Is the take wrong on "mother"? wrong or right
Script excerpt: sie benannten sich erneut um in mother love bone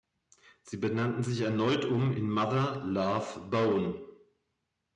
right